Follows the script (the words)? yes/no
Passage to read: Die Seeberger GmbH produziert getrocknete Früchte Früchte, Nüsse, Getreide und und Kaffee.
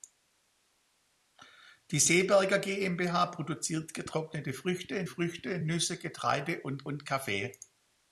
yes